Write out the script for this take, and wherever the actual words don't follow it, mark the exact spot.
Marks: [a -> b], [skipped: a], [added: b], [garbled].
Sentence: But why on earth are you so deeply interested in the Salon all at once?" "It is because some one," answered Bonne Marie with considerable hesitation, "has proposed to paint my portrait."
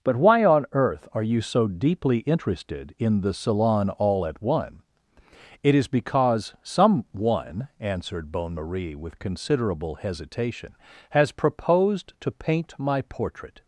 But why on earth are you so deeply interested in the Salon all at [once?" -> one] "It is because some one," answered Bonne Marie with considerable hesitation, "has proposed to paint my portrait."